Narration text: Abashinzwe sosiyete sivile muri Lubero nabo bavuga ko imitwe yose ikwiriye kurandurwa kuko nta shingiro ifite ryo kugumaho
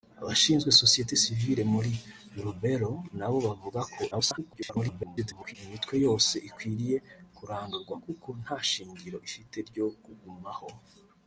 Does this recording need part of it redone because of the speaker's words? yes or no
yes